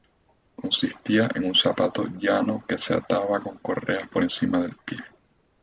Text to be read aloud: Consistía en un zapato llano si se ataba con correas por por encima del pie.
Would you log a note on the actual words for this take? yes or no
yes